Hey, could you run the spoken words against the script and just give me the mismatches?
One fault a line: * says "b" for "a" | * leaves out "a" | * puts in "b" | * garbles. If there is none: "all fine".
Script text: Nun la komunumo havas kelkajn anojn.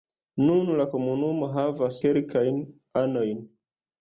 all fine